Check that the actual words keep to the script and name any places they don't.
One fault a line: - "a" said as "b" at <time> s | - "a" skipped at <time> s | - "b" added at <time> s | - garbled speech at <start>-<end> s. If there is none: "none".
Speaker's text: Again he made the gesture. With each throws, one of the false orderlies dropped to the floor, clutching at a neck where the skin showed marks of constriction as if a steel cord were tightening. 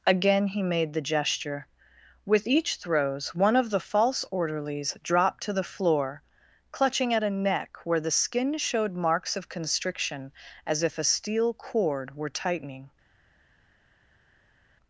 none